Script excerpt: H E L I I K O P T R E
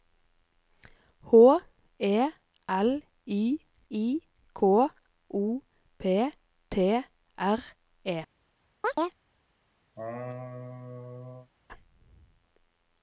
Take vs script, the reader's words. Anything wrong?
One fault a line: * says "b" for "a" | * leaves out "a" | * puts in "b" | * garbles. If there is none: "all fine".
all fine